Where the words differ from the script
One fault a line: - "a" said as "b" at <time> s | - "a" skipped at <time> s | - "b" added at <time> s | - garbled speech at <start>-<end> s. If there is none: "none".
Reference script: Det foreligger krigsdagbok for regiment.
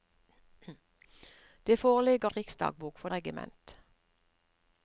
none